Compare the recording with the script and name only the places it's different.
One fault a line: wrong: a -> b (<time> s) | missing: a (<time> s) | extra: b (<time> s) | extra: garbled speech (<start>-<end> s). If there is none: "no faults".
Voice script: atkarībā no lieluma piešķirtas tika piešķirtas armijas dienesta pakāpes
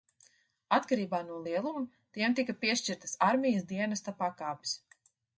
wrong: piešķirtas -> tiem (2.2 s)